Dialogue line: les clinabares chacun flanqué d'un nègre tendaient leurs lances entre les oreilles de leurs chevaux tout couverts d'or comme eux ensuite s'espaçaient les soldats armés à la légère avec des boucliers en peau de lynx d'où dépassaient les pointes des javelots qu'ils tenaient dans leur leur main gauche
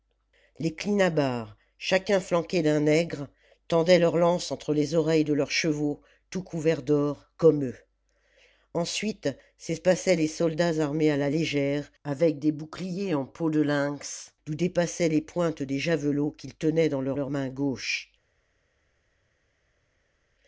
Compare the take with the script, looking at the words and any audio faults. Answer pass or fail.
pass